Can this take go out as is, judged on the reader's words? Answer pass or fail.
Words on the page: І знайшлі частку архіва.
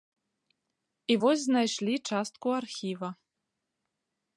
fail